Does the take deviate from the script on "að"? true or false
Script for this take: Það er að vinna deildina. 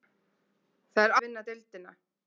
false